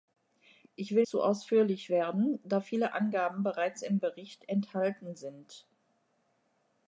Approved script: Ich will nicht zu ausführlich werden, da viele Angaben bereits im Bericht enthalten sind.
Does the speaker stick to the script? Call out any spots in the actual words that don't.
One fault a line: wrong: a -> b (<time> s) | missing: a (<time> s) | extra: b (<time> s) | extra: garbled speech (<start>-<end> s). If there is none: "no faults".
missing: nicht (1.1 s)